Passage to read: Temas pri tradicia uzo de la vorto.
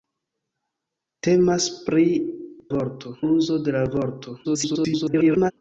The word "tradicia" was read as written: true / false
false